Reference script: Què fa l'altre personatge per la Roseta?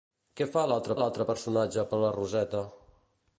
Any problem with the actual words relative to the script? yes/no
yes